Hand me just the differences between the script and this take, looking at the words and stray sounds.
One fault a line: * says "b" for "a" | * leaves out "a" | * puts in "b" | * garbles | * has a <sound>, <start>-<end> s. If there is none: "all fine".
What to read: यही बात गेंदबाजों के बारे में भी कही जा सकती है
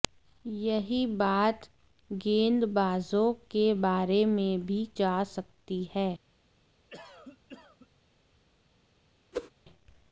* leaves out "कही"
* has a cough, 6.9-7.9 s
* has a whoosh, 9.3-9.5 s